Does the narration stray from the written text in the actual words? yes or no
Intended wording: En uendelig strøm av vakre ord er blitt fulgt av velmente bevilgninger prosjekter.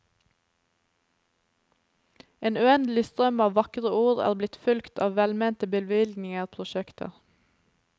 no